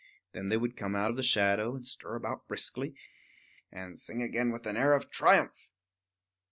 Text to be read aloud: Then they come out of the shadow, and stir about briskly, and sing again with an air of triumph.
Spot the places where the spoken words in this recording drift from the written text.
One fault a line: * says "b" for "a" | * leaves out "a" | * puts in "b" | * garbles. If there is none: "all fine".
* puts in "would"